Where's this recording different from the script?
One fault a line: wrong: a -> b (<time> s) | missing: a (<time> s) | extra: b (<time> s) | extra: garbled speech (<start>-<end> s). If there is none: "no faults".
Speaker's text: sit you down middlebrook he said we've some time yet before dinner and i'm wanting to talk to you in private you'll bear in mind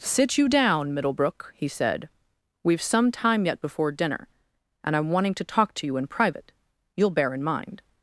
no faults